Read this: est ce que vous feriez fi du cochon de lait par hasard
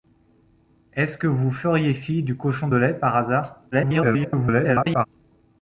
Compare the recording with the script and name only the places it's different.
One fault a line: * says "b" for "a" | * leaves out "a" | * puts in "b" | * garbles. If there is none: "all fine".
* garbles